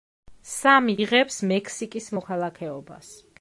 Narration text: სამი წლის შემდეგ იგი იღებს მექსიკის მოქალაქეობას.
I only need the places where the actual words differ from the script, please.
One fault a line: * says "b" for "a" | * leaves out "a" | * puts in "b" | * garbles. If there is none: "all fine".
* leaves out "წლის შემდეგ იგი"